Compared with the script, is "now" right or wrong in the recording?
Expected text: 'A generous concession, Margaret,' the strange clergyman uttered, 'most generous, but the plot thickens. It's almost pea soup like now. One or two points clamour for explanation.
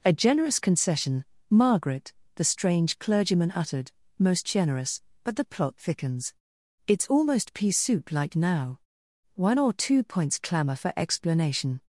right